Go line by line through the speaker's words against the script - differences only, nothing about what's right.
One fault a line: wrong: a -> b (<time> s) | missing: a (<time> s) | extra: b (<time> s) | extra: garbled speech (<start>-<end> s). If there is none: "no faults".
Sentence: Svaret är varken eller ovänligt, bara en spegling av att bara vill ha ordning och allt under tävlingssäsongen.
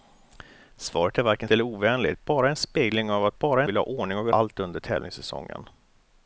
no faults